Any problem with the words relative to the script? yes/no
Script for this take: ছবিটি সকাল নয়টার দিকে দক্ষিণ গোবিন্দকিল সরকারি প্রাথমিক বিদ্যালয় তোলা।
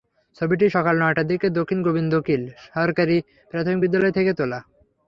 yes